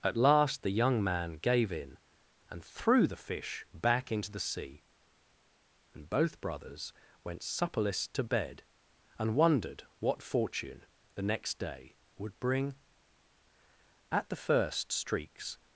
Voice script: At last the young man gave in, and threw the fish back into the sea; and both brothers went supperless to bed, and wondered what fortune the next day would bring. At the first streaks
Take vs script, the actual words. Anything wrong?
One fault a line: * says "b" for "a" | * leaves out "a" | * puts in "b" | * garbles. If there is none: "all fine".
all fine